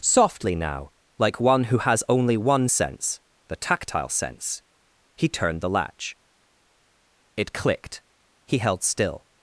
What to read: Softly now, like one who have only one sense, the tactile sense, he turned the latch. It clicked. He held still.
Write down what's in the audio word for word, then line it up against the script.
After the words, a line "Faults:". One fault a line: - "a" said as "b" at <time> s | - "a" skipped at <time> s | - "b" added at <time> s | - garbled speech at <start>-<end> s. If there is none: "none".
Softly now, like one who has only one sense, the tactile sense, he turned the latch. It clicked. He held still.
Faults:
- "have" said as "has" at 1.8 s